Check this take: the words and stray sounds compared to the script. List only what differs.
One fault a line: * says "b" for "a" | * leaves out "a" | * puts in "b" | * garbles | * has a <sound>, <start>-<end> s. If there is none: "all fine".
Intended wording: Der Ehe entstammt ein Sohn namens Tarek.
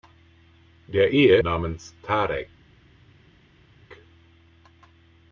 * leaves out "entstammt ein Sohn"